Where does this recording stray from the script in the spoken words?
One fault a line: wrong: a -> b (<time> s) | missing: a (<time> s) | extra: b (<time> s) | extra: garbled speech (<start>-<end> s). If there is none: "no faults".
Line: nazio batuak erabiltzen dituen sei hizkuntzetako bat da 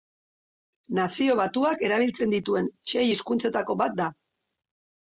no faults